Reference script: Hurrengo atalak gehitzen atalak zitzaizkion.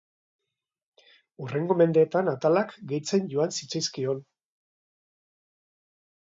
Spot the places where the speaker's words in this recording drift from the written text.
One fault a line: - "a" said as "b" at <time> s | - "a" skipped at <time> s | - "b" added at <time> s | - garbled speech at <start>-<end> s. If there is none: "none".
- "mendeetan" added at 1.8 s
- "atalak" said as "joan" at 3.4 s